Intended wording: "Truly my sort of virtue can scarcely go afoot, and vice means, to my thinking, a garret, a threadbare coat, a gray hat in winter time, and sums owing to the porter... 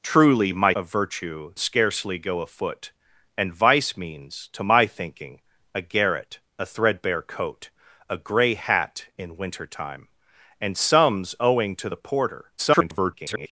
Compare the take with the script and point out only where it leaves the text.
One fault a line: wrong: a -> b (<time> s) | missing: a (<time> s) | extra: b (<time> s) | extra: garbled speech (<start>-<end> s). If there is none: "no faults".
missing: sort (0.7 s)
missing: can (1.5 s)
extra: garbled speech (12.6-13.5 s)